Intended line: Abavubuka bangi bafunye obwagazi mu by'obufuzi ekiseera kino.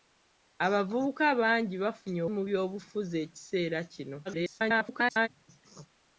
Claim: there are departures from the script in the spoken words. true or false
true